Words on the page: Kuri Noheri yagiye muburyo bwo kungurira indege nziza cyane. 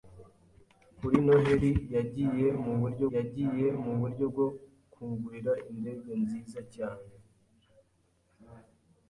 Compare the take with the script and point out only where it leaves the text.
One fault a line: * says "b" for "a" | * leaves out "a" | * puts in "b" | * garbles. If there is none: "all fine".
* puts in "yagiye muburyo"